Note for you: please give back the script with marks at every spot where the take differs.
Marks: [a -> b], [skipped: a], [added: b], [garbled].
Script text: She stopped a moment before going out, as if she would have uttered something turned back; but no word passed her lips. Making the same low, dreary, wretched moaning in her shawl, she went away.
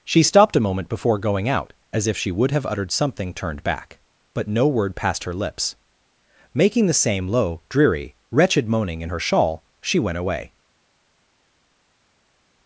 She stopped a moment before going out, as if she would have uttered something turned back; but no word passed her lips. Making the same low, dreary, wretched moaning in her shawl, she went away.